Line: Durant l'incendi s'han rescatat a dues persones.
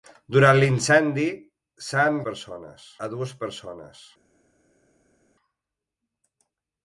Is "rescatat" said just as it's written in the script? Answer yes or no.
no